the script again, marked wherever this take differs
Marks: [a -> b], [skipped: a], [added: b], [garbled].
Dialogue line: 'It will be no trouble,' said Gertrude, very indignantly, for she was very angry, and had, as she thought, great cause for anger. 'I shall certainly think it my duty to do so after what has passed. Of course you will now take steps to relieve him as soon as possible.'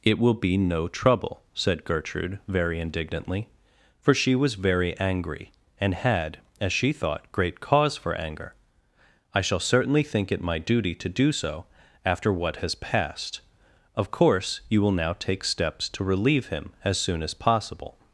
'It will be no trouble,' said Gertrude, very indignantly, for she was very angry, and had, as she thought, great cause for anger. 'I shall certainly think it my duty to do so after what has passed. Of course you will now take steps to relieve him as soon as possible.'